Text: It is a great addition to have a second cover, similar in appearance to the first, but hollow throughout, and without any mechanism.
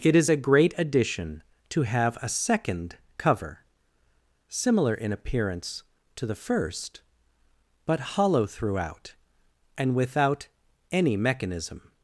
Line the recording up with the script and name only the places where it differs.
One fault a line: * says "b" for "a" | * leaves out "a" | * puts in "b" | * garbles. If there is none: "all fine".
all fine